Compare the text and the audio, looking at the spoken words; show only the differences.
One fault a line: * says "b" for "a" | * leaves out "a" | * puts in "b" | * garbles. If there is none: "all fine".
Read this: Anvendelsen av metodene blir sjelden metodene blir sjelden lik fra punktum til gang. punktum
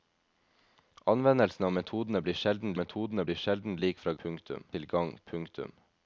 all fine